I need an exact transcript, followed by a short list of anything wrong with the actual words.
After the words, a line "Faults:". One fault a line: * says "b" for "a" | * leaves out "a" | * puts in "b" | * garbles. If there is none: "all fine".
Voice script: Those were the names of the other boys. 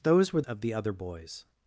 Those were of the other boys.
Faults:
* leaves out "the names"